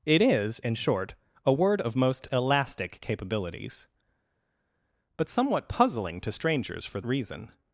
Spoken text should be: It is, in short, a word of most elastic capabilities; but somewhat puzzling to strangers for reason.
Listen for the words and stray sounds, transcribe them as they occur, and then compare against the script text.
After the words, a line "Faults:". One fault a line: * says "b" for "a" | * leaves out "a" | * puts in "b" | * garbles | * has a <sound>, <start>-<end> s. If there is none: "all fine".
It is, in short, a word of most elastic capabilities; but somewhat puzzling to strangers for reason.
Faults:
all fine